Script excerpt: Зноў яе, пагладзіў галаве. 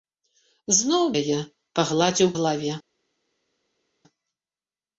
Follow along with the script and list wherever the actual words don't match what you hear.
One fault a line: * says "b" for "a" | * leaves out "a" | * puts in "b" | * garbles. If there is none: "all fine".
all fine